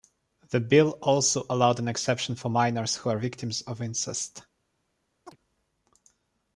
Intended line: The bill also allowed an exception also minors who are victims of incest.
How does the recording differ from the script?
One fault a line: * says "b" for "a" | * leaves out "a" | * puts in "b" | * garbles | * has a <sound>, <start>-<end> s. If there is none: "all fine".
* says "for" for "also"
* has a chirp, 5.3-5.4 s